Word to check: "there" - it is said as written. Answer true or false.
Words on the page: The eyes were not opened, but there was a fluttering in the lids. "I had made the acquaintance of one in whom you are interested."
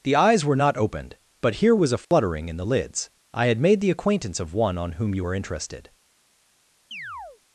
false